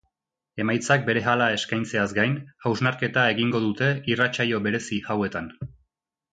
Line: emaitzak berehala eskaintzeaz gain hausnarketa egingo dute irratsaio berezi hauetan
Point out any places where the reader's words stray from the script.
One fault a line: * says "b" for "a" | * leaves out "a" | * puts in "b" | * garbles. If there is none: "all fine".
all fine